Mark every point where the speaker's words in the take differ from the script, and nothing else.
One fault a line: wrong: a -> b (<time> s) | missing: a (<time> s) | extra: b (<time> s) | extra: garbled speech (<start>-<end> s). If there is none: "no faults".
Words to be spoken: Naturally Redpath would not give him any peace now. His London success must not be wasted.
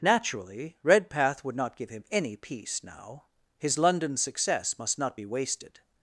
no faults